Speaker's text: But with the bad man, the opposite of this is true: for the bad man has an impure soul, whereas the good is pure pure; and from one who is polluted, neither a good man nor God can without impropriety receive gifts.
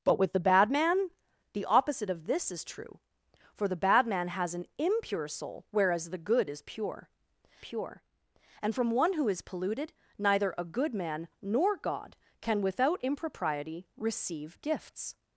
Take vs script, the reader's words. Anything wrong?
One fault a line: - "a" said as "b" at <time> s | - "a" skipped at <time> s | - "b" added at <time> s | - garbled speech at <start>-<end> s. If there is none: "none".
none